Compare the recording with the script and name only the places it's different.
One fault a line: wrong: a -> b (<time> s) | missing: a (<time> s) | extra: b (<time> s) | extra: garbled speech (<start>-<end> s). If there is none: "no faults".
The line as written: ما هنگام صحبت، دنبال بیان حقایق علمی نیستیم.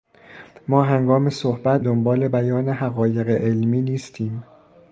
no faults